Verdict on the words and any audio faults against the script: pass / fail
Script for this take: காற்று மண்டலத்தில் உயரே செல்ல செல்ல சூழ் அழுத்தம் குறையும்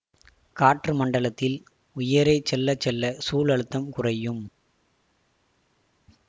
pass